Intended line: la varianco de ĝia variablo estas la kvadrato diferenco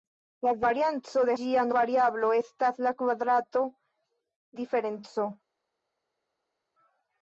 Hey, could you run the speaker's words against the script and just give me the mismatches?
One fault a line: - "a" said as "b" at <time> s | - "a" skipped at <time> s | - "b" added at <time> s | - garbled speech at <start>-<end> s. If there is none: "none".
none